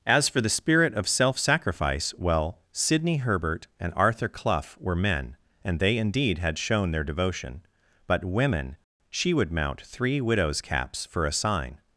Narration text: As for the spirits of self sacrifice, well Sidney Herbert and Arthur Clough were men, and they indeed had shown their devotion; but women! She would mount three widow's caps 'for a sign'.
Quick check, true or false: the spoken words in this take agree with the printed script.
false